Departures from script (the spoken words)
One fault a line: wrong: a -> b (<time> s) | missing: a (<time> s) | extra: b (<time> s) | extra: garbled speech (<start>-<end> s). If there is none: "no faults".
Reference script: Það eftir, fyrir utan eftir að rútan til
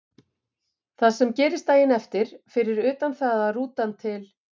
extra: sem gerist daginn (1.2 s)
wrong: eftir -> það (3.2 s)